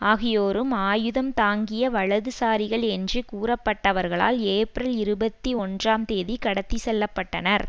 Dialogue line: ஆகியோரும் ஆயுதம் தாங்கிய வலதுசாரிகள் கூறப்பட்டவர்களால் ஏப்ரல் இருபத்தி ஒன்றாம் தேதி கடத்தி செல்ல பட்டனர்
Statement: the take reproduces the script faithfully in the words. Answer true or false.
false